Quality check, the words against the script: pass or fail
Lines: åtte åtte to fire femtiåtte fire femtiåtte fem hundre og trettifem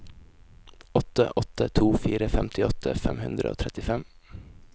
fail